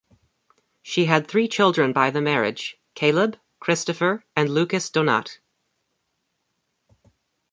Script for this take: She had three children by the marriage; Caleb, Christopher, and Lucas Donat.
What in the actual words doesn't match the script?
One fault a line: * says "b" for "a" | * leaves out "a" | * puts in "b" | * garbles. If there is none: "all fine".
all fine